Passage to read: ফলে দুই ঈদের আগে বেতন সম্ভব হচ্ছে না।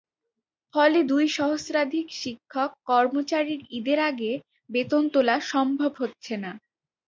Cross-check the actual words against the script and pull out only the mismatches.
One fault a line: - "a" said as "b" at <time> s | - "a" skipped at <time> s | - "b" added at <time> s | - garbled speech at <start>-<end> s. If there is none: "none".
- "সহস্রাধিক শিক্ষক কর্মচারীর" added at 1.4 s
- "তোলা" added at 5.1 s